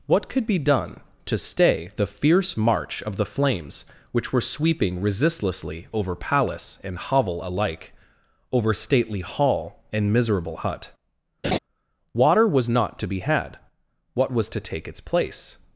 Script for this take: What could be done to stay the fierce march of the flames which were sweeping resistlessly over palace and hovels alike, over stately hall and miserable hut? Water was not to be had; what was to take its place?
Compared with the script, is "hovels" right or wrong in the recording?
wrong